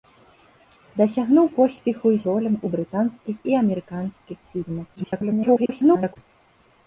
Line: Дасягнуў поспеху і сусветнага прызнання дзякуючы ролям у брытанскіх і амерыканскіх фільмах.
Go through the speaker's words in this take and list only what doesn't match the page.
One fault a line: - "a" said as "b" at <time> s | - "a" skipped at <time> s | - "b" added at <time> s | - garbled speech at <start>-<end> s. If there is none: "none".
- "сусветнага прызнання дзякуючы" skipped at 2.2 s
- garbled speech at 5.0-6.2 s